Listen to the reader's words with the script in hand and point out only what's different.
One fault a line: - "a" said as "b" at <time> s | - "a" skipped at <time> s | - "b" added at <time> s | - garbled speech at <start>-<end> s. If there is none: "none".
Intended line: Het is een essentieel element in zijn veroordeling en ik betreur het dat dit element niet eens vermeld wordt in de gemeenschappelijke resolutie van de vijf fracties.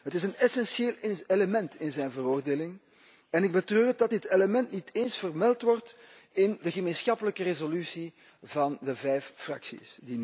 none